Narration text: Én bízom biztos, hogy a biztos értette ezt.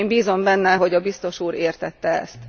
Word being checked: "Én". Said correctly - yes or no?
yes